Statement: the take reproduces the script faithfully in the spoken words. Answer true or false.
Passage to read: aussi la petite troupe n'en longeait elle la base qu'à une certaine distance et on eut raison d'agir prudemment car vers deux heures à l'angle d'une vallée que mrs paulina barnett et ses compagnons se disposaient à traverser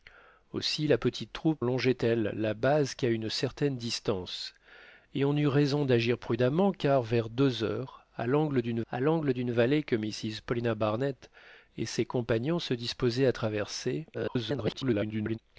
false